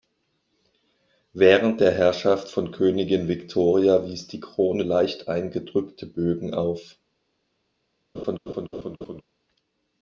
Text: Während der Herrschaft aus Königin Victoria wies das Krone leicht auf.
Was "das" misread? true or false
true